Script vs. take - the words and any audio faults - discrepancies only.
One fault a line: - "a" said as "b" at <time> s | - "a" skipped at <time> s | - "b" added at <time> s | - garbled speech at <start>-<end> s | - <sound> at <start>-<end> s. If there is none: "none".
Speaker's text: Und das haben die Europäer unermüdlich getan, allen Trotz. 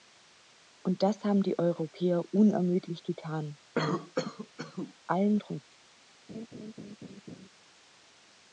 - cough at 3.7-4.9 s
- laugh at 6.3-7.5 s